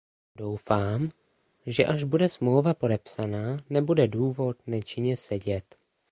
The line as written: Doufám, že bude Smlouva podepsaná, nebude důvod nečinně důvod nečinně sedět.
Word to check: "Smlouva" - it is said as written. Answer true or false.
true